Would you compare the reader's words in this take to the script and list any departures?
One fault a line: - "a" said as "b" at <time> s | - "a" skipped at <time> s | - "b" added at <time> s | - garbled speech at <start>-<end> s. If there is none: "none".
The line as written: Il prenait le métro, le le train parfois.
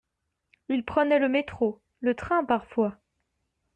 - "le" skipped at 2.2 s